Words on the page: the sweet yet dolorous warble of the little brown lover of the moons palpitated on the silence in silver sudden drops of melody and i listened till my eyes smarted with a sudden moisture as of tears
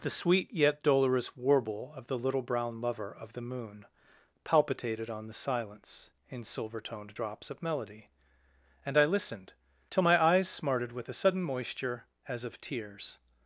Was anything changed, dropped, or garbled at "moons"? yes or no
yes